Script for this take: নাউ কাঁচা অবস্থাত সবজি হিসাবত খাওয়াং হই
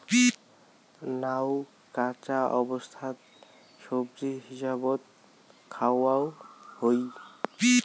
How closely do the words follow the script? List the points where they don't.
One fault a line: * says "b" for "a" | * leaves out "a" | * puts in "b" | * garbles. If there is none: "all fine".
all fine